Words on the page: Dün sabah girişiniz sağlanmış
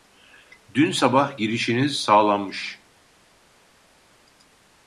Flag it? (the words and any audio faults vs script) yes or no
no